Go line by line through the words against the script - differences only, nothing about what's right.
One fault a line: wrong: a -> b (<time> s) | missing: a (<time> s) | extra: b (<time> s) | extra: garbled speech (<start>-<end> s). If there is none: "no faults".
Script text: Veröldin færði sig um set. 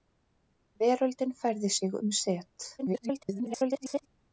extra: garbled speech (2.8-4.1 s)